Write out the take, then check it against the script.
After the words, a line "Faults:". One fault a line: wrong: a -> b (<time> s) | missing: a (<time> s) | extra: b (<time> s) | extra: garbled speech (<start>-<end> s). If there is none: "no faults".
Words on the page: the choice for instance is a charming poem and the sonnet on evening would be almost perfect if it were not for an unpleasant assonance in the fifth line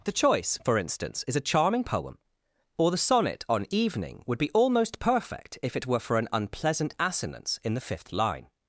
the choice for instance is a charming poem or the sonnet on evening would be almost perfect if it were for an unpleasant assonance in the fifth line
Faults:
wrong: and -> or (2.8 s)
missing: not (6.0 s)